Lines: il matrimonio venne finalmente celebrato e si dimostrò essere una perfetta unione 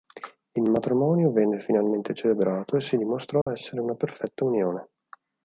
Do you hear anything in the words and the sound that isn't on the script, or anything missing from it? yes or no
yes